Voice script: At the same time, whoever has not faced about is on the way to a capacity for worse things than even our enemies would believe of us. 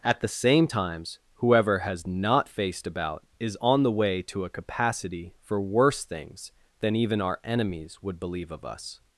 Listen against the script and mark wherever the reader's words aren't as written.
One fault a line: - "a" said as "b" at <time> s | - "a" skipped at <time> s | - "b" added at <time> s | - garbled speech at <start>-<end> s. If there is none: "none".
- "time" said as "times" at 0.6 s